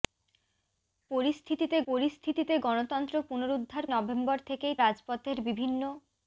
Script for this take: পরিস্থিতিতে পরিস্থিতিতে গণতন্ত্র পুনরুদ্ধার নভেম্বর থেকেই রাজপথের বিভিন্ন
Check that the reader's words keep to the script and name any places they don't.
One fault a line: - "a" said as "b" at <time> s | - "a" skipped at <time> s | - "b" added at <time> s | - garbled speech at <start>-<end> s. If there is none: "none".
none